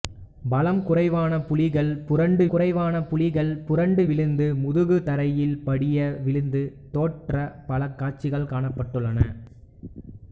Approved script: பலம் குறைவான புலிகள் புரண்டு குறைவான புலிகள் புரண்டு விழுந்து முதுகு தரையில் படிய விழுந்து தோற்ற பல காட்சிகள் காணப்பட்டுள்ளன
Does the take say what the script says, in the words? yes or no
yes